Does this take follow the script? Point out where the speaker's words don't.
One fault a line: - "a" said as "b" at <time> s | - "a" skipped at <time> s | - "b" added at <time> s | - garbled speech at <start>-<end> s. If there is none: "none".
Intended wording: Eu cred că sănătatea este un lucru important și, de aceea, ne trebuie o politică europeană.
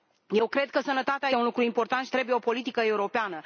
- "este" skipped at 1.3 s
- "de aceea ne" skipped at 2.1 s